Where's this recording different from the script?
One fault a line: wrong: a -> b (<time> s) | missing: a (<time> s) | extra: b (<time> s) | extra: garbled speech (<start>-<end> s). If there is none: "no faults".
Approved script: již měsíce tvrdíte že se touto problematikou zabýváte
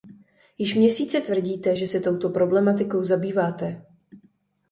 no faults